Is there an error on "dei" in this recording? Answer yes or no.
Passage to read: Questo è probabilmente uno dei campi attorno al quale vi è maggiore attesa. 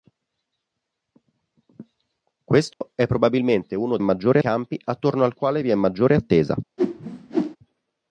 yes